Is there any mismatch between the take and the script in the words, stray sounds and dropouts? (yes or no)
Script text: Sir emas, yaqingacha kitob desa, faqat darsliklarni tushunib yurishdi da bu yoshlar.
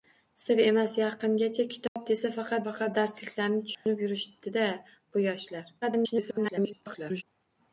yes